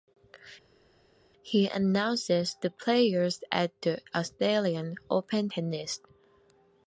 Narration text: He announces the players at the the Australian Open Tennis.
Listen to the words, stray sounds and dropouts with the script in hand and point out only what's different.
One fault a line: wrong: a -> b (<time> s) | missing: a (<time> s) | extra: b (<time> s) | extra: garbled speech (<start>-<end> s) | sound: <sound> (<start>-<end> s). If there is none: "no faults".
missing: the (4.0 s)